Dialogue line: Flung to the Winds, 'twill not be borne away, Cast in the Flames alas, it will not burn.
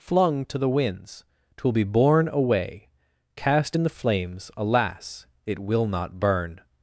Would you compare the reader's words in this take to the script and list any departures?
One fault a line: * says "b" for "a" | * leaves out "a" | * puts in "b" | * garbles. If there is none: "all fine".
* leaves out "not"